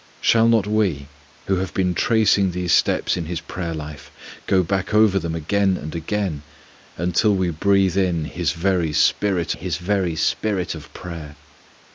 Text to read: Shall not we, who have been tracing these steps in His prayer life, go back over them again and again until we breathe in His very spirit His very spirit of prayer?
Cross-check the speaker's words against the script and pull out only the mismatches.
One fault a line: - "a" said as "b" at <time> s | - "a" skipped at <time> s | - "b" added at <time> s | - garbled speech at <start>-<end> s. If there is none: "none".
none